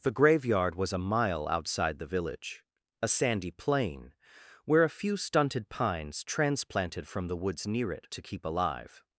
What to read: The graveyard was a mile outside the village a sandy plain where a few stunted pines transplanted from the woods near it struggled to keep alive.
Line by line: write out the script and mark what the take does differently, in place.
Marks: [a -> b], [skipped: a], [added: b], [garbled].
The graveyard was a mile outside the village a sandy plain where a few stunted pines transplanted from the woods near it [skipped: struggled] to keep alive.